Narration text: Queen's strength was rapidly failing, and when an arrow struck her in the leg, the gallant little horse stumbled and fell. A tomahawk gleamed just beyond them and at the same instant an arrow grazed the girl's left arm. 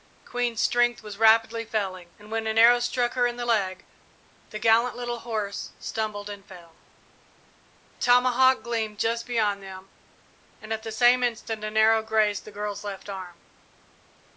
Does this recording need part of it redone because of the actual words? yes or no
no